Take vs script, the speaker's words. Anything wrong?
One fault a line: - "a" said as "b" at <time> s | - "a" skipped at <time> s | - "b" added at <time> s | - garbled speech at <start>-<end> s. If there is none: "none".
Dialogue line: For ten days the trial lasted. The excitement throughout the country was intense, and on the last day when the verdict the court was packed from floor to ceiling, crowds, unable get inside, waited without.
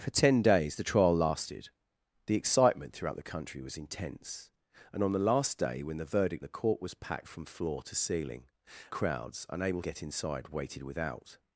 none